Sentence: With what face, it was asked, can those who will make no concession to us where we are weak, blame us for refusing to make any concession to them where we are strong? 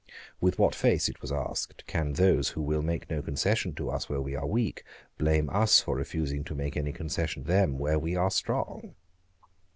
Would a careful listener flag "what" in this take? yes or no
no